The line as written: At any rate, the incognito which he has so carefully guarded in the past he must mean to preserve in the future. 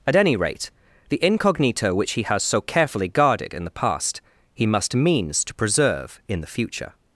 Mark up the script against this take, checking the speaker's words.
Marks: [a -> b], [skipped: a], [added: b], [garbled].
At any rate, the incognito which he has so carefully guarded in the past he must [mean -> means] to preserve in the future.